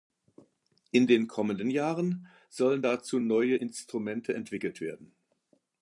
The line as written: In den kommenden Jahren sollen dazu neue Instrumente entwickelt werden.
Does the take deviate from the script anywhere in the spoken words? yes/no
no